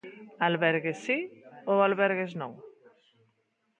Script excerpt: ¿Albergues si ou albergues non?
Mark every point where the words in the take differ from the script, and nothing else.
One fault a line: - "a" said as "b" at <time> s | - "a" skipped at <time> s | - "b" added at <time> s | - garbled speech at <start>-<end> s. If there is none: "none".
none